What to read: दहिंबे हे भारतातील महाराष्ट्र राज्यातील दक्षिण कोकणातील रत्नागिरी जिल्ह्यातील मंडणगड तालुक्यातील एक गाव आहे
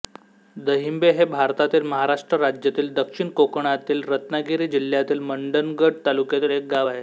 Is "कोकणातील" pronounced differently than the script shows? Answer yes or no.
no